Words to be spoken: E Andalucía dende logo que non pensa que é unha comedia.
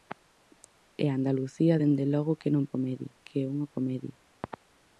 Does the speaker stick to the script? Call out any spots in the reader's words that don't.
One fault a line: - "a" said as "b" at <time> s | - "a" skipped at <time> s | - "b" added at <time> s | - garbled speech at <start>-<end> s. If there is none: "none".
- "pensa" said as "comedia" at 2.7 s